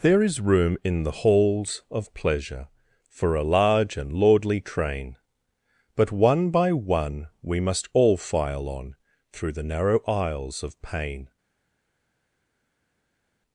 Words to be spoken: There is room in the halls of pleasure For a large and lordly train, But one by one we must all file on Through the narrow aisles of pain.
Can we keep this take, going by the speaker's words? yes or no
yes